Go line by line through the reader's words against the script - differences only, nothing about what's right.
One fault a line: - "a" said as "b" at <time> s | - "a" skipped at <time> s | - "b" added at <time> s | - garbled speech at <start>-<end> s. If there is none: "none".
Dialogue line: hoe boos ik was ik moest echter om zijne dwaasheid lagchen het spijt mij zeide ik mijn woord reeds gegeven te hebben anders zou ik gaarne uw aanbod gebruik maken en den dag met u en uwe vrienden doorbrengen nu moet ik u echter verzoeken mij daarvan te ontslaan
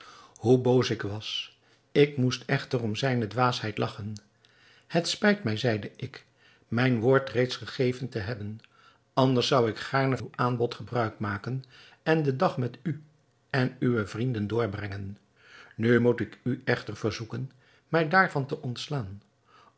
none